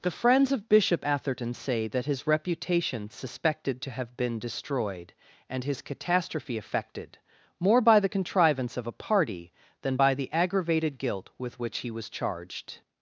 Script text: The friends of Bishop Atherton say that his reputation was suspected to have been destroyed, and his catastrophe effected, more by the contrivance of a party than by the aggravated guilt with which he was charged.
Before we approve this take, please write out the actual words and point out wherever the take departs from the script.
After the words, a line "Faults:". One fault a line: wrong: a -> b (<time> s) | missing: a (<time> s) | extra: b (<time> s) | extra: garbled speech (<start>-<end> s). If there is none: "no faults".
The friends of Bishop Atherton say that his reputation suspected to have been destroyed, and his catastrophe effected, more by the contrivance of a party than by the aggravated guilt with which he was charged.
Faults:
missing: was (3.1 s)